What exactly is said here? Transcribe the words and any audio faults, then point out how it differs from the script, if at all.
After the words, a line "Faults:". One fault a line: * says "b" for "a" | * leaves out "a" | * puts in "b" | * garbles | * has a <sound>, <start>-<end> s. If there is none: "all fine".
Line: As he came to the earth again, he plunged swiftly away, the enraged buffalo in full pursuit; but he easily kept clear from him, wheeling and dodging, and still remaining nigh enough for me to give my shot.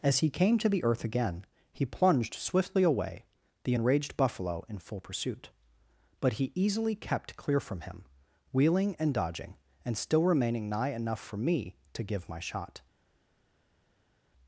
As he came to the earth again, he plunged swiftly away, the enraged buffalo in full pursuit; but he easily kept clear from him, wheeling and dodging, and still remaining nigh enough for me to give my shot.
Faults:
all fine